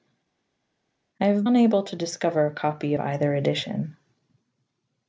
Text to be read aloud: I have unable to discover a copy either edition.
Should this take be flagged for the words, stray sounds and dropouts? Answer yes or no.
no